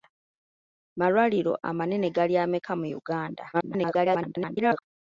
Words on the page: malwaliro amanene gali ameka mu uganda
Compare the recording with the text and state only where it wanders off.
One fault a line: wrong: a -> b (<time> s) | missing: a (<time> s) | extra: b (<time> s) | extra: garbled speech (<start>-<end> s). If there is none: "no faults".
extra: garbled speech (3.5-4.8 s)